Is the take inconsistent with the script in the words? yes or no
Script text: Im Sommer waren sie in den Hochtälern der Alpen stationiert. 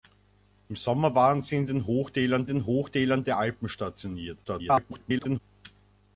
yes